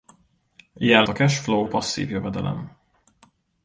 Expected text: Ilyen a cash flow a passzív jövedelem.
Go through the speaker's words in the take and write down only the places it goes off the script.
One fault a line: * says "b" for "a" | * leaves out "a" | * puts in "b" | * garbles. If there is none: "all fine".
all fine